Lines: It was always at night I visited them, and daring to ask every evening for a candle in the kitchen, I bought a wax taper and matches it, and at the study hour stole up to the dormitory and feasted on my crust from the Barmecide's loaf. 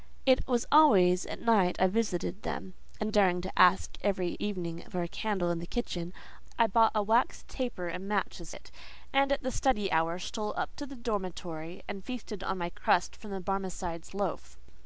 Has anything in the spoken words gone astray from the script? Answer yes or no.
no